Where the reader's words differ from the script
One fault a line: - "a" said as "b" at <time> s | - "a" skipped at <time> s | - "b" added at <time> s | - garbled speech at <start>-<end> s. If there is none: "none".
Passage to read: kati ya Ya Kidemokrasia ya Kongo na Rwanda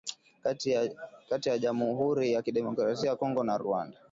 - "Jamuhuri" added at 1.6 s